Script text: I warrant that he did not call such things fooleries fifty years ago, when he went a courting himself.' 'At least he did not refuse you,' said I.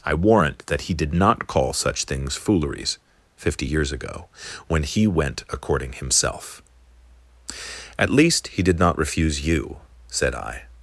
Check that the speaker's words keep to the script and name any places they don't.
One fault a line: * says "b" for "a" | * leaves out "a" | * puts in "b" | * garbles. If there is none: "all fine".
all fine